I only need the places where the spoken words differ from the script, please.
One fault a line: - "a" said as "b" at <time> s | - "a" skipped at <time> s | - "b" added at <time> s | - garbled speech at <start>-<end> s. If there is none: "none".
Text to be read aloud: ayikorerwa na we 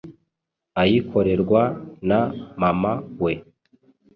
- "mama" added at 2.6 s